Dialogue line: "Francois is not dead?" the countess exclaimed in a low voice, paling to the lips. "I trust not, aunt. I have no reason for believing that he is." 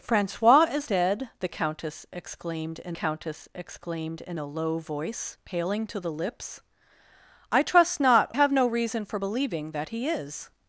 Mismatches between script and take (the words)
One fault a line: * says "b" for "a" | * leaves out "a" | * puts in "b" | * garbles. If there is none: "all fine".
* leaves out "not"
* puts in "countess exclaimed in"
* leaves out "aunt I"